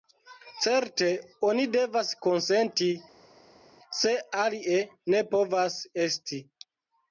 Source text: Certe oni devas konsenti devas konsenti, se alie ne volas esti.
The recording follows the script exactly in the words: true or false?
false